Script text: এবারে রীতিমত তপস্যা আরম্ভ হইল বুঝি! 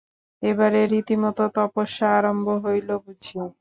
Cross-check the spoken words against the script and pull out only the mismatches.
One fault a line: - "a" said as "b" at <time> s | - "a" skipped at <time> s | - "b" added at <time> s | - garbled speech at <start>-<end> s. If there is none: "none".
none